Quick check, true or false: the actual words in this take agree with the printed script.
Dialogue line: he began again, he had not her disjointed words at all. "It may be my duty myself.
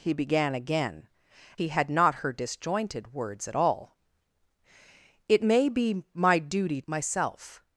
true